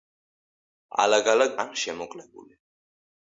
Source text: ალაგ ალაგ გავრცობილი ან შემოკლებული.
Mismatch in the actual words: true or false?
true